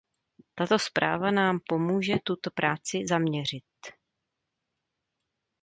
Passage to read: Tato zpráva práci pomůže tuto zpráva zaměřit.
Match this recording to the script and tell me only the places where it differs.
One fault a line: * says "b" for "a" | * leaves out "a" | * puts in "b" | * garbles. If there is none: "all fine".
* says "nám" for "práci"
* says "práci" for "zpráva"